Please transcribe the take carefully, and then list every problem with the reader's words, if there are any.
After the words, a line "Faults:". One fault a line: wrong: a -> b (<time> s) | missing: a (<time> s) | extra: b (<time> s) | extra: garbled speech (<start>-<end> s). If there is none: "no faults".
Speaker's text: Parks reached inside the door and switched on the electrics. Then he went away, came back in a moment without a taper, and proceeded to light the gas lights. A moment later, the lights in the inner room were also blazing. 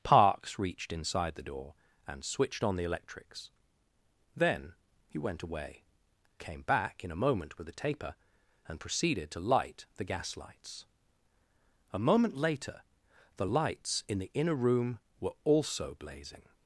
Parks reached inside the door and switched on the electrics. Then he went away, came back in a moment with a taper, and proceeded to light the gas lights. A moment later, the lights in the inner room were also blazing.
Faults:
wrong: without -> with (7.6 s)